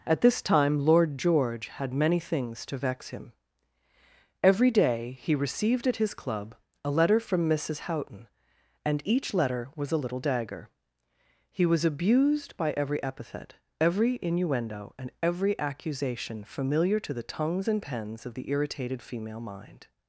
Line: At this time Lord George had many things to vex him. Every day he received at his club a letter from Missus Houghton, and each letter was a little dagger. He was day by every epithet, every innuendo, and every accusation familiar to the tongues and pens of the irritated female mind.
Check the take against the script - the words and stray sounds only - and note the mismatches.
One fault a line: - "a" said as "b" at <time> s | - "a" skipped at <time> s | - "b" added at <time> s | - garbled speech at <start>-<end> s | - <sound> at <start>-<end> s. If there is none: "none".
- "day" said as "abused" at 11.8 s